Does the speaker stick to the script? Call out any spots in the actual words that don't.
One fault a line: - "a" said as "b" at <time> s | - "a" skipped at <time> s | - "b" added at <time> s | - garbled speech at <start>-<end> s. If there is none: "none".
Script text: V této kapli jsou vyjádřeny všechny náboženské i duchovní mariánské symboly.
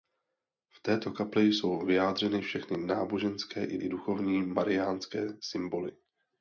- "i" added at 3.8 s